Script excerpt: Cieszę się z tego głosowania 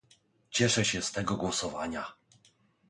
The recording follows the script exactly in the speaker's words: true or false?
true